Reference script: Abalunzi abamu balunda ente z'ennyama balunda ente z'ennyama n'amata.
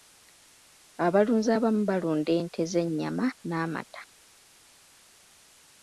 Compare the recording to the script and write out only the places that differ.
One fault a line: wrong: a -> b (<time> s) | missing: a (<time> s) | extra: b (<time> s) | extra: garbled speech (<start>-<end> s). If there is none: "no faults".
missing: balunda ente z'ennyama (3.3 s)